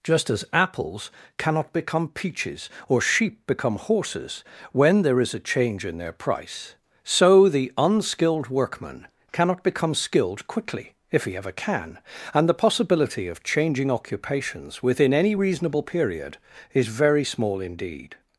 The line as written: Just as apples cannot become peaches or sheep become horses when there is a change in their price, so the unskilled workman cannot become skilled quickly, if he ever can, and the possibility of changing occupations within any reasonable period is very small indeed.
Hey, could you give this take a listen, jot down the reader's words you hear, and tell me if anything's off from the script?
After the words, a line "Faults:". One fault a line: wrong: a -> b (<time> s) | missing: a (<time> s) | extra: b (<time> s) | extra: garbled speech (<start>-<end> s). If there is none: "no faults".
Just as apples cannot become peaches or sheep become horses when there is a change in their price, so the unskilled workman cannot become skilled quickly, if he ever can, and the possibility of changing occupations within any reasonable period is very small indeed.
Faults:
no faults